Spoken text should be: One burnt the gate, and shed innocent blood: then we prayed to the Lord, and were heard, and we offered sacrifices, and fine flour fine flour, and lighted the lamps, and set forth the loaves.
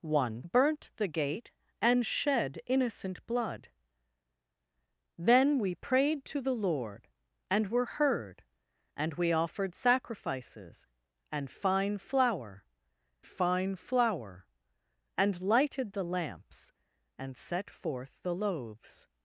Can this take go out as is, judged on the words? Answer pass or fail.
pass